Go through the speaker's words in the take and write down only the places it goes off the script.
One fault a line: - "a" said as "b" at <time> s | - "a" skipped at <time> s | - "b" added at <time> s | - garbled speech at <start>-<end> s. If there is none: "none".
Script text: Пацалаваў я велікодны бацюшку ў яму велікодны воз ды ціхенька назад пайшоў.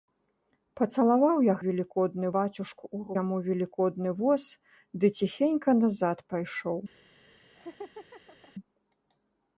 none